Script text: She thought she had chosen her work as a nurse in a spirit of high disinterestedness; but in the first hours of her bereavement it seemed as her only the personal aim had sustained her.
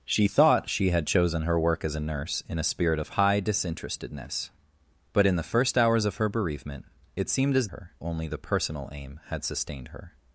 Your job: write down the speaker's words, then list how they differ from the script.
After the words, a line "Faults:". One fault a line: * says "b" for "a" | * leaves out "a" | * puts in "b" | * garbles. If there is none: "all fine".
She thought she had chosen her work as a nurse in a spirit of high disinterestedness; but in the first hours of her bereavement it seemed as her only the personal aim had sustained her.
Faults:
all fine